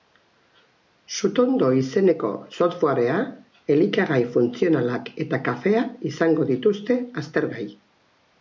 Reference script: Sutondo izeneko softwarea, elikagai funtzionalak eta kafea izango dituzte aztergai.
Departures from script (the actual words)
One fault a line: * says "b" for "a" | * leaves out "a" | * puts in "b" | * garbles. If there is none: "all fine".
all fine